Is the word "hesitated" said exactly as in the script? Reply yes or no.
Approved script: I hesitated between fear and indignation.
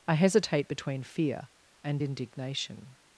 no